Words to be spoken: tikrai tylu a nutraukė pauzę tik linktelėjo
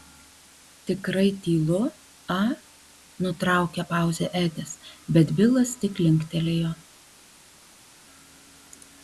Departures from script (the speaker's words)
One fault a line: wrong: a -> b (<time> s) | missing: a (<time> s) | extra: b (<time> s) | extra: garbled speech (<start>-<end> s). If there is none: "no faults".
extra: edis bet bilas (4.4 s)